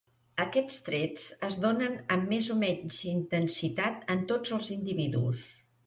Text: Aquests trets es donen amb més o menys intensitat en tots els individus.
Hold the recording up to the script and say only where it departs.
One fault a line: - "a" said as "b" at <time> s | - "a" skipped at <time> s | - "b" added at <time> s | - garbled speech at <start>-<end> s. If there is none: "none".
none